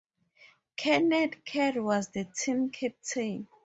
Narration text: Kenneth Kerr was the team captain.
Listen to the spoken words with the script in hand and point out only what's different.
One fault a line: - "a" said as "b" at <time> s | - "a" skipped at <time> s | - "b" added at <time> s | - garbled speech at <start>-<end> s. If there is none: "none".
none